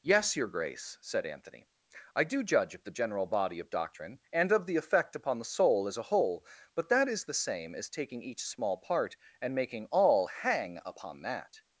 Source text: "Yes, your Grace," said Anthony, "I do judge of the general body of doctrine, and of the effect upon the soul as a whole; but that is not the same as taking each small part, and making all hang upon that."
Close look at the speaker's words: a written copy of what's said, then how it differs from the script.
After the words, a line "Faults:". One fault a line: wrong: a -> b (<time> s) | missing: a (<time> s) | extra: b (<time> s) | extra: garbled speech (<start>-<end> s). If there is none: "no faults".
"Yes, your Grace," said Anthony, "I do judge of the general body of doctrine, and of the effect upon the soul as a whole; but that is the same as taking each small part, and making all hang upon that."
Faults:
missing: not (7.2 s)